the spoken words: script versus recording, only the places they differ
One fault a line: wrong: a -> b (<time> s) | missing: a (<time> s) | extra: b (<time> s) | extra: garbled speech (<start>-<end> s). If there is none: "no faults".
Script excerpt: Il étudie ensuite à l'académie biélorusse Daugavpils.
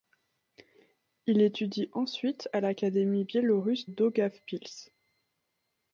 no faults